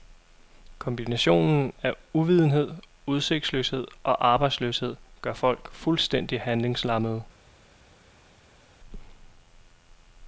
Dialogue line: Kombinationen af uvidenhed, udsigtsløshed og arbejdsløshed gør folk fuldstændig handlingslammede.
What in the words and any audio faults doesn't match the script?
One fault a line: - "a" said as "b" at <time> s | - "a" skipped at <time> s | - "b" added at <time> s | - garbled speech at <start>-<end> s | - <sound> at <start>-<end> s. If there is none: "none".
none